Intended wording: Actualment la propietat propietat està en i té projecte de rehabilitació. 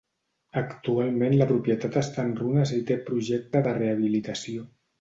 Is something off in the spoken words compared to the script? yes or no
yes